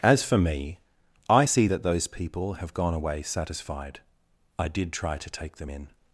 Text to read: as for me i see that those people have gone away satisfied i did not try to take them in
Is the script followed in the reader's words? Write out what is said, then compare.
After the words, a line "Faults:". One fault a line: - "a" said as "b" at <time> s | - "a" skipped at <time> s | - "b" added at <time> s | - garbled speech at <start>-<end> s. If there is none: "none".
as for me i see that those people have gone away satisfied i did try to take them in
Faults:
- "not" skipped at 4.9 s